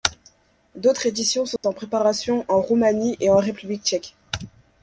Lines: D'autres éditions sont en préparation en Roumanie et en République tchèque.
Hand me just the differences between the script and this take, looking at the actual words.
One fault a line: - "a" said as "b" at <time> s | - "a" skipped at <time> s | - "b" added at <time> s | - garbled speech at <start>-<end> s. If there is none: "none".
none